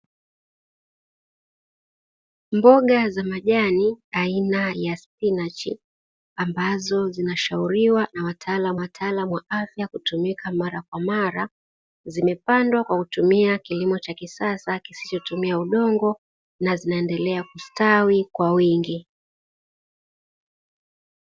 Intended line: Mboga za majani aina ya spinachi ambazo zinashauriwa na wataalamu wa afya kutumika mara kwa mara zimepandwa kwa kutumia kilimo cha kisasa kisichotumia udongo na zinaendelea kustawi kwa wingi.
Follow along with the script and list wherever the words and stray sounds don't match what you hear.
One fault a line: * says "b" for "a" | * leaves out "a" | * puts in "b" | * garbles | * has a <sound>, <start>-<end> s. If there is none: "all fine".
* puts in "wataalamu"